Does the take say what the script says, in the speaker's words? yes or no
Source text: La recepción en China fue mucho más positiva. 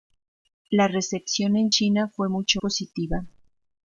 no